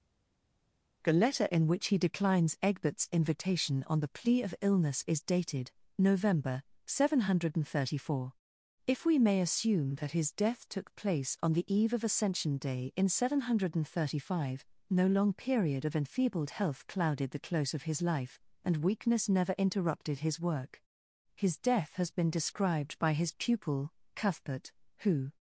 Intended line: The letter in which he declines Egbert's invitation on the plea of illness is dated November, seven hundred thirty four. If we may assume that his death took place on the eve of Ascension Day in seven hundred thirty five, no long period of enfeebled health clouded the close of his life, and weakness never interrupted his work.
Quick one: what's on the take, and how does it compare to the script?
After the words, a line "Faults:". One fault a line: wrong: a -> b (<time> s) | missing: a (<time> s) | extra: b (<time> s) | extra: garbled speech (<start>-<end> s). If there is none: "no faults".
The letter in which he declines Egbert's invitation on the plea of illness is dated November, seven hundred thirty four. If we may assume that his death took place on the eve of Ascension Day in seven hundred thirty five, no long period of enfeebled health clouded the close of his life, and weakness never interrupted his work. His death has been described by his pupil, Cuthbert, who
Faults:
extra: His death has been described by his pupil Cuthbert who (21.3 s)